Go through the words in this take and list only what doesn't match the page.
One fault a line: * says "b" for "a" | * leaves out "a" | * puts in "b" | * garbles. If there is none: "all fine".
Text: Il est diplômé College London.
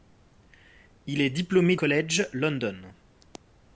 all fine